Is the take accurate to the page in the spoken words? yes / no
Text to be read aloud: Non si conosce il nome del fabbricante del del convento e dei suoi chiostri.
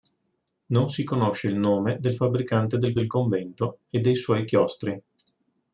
yes